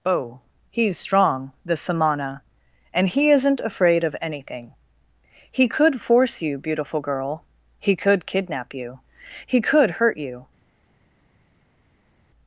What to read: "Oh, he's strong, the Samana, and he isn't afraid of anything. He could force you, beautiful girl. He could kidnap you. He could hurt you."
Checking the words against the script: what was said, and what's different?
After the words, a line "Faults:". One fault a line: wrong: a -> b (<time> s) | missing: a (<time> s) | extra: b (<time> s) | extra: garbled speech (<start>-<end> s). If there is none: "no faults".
"Oh, he's strong, the Samana, and he isn't afraid of anything. He could force you, beautiful girl. He could kidnap you. He could hurt you."
Faults:
no faults